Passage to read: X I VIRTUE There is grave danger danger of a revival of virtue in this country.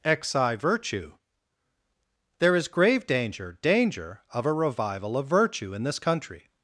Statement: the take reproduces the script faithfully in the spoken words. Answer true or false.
true